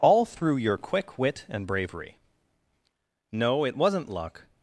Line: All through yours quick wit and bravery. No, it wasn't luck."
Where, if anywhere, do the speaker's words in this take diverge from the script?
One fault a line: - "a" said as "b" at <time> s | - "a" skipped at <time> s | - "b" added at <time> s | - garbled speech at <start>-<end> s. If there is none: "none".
- "yours" said as "your" at 0.6 s